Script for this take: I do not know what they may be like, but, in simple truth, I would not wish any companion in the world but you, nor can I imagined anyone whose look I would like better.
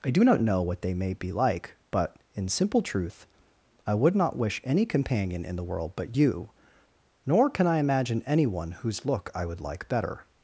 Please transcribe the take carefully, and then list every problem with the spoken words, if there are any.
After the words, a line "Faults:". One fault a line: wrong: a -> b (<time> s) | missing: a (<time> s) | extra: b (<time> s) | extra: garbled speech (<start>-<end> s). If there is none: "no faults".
I do not know what they may be like, but, in simple truth, I would not wish any companion in the world but you, nor can I imagine anyone whose look I would like better.
Faults:
wrong: imagined -> imagine (7.8 s)